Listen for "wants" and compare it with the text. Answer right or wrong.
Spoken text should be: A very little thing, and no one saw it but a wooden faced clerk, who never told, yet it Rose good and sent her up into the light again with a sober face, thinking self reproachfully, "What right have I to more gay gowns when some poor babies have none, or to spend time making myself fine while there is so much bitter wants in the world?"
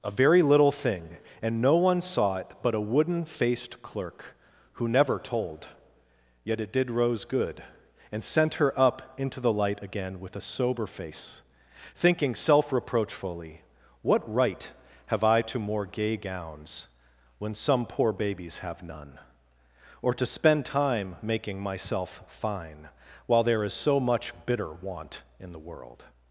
wrong